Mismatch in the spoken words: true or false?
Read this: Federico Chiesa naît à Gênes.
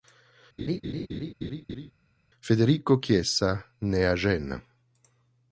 false